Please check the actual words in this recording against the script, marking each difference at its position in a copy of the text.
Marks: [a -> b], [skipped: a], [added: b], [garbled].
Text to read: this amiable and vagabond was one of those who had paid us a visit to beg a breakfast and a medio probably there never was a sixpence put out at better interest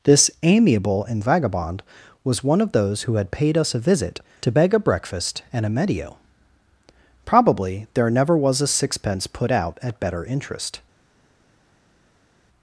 this amiable and vagabond was one of those who had paid us a visit to beg a breakfast and a medio probably there never was a sixpence put out at better interest